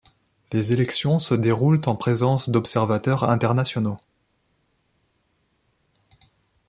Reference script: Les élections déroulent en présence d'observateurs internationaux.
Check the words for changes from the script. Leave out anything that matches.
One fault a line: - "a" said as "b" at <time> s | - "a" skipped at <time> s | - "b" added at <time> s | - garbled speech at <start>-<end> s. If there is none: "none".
- "se" added at 1.2 s